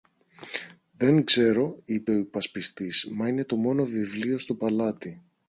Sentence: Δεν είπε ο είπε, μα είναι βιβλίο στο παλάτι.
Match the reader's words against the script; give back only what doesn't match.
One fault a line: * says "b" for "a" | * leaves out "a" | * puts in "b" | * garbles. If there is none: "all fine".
* puts in "ξέρω"
* says "υπασπιστής" for "είπε"
* puts in "το μόνο"